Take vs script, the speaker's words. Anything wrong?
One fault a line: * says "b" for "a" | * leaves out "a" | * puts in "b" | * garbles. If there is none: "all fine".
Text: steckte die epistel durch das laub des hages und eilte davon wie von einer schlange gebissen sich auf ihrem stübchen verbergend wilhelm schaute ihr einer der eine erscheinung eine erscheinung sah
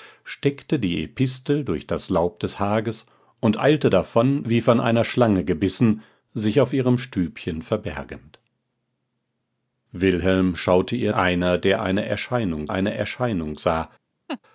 all fine